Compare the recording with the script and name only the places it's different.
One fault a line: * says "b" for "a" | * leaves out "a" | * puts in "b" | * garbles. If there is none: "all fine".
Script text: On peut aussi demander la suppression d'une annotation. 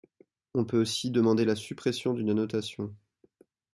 all fine